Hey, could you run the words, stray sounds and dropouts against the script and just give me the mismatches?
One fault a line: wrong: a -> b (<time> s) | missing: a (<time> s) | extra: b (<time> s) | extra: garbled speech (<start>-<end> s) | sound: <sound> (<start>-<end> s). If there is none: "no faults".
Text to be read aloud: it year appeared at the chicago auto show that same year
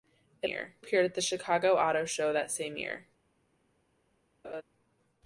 sound: laugh (4.4-4.6 s)